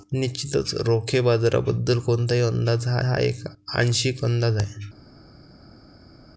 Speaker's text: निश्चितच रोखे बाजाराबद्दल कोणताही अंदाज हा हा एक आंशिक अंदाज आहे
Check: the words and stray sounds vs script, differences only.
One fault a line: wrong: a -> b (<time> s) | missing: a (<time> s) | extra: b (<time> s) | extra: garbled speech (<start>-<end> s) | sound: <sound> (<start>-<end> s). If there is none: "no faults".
no faults